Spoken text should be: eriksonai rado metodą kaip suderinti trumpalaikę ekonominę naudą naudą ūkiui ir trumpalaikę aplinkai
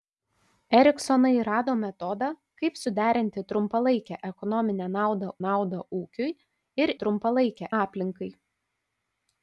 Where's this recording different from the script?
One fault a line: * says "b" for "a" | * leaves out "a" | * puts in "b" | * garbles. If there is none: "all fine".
all fine